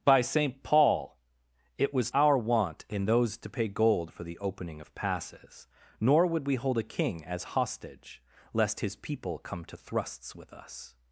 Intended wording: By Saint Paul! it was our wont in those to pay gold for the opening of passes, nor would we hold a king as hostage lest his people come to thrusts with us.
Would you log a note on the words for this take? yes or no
no